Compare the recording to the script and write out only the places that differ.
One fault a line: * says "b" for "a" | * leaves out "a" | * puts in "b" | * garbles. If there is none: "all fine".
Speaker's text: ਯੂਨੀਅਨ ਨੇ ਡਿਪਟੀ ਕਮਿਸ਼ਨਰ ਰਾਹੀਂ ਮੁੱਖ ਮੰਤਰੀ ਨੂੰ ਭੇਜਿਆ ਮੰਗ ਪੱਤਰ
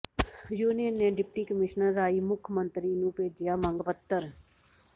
all fine